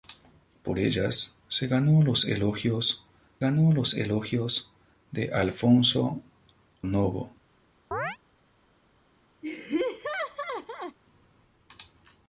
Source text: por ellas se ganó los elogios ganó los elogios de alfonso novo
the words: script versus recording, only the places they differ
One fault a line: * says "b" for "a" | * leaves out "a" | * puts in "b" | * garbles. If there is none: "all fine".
all fine